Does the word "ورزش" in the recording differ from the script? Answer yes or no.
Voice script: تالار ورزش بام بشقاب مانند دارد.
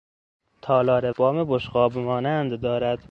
yes